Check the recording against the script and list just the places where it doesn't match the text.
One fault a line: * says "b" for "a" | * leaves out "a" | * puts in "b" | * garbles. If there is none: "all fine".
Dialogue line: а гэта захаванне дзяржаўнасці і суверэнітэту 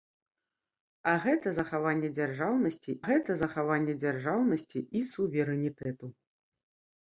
* puts in "гэта захаванне дзяржаўнасці"